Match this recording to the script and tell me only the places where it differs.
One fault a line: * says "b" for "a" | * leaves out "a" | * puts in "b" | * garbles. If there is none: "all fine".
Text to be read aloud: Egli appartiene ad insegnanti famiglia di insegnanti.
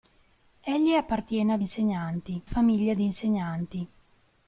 all fine